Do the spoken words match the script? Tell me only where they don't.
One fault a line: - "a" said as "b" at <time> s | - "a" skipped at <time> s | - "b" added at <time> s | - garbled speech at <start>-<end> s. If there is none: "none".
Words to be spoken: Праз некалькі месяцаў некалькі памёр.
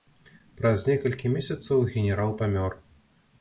- "некалькі" said as "генерал" at 1.9 s